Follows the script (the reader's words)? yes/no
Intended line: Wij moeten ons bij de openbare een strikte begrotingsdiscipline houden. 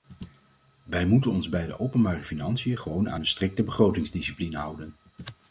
no